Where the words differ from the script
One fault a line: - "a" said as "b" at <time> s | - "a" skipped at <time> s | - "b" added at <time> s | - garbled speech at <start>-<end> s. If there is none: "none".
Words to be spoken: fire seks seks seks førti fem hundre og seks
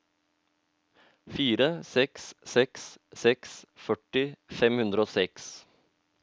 none